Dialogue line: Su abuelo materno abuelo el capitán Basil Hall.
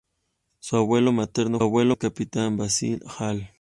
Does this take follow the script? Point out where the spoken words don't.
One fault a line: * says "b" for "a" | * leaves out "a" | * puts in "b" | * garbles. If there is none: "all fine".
all fine